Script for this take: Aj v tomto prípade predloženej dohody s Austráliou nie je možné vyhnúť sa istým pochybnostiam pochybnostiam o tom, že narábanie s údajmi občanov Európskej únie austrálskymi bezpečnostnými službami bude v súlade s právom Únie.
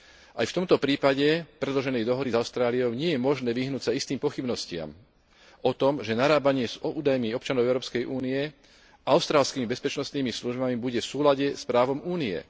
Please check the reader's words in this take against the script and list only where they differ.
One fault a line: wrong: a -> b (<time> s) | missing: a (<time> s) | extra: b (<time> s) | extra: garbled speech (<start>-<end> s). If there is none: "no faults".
missing: pochybnostiam (4.9 s)